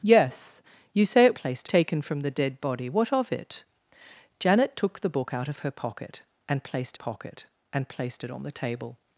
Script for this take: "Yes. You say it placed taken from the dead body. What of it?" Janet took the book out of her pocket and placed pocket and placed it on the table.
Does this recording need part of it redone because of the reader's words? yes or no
no